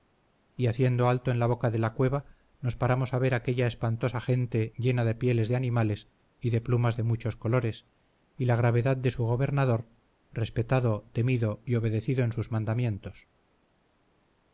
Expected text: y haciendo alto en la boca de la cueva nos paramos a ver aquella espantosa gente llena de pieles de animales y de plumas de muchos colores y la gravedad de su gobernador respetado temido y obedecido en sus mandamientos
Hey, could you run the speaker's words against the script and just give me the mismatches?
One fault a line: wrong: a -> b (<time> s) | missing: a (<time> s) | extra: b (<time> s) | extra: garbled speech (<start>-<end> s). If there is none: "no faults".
no faults